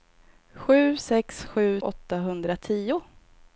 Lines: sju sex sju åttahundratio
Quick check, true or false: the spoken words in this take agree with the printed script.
true